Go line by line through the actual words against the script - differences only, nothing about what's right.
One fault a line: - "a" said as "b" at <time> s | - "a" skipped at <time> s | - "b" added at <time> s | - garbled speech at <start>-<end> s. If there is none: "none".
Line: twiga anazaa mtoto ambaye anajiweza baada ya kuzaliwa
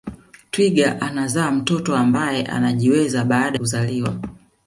- "ya" skipped at 3.6 s